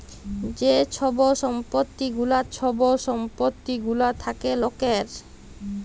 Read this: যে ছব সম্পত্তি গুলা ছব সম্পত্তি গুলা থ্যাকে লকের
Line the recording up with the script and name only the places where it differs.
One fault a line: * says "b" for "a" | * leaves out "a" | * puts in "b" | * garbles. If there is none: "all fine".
all fine